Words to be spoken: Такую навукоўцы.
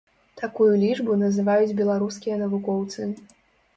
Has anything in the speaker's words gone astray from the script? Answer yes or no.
yes